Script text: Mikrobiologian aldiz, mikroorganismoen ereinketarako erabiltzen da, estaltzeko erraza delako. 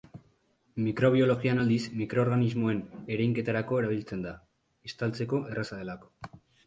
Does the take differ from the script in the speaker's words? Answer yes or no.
no